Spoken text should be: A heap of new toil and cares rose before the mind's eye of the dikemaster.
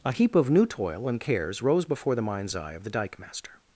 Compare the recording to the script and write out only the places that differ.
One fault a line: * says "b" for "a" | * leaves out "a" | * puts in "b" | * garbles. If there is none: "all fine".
all fine